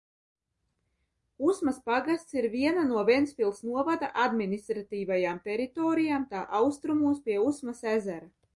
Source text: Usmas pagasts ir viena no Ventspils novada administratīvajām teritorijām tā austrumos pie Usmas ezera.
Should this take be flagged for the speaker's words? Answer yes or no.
no